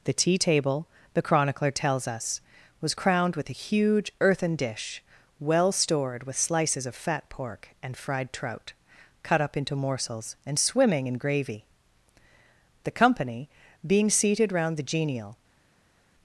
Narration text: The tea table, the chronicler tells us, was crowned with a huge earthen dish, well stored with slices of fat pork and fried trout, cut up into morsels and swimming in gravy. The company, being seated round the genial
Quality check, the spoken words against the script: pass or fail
pass